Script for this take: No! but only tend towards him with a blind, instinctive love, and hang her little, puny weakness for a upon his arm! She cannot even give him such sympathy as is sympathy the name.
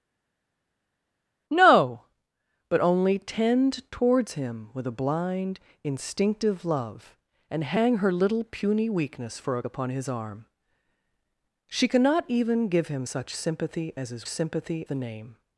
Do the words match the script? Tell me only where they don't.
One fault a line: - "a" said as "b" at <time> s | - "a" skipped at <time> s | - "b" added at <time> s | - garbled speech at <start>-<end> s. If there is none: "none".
none